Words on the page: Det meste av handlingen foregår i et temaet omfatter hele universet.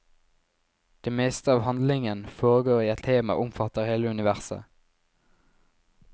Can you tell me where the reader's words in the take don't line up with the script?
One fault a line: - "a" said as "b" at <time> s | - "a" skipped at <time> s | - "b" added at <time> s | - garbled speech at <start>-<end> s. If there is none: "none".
none